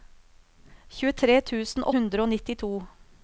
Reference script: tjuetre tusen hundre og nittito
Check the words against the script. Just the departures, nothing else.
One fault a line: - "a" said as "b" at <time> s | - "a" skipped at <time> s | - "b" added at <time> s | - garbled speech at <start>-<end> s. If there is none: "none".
none